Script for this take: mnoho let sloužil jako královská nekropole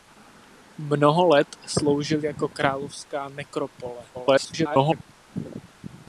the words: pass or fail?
fail